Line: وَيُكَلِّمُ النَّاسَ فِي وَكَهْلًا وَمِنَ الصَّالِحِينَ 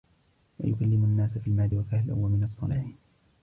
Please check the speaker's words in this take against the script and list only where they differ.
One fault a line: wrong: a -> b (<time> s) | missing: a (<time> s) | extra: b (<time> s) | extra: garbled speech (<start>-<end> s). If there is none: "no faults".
extra: الْمَهْدِ (1.5 s)